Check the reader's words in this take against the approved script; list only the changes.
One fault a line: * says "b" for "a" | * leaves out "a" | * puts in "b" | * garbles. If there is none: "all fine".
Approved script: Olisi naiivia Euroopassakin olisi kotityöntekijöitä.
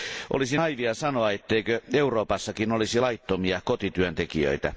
* puts in "sanoa etteikö"
* puts in "laittomia"